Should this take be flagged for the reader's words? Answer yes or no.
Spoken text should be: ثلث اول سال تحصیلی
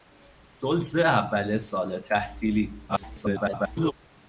yes